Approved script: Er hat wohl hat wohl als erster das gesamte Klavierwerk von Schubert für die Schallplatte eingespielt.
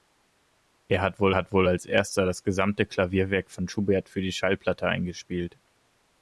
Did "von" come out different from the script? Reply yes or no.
no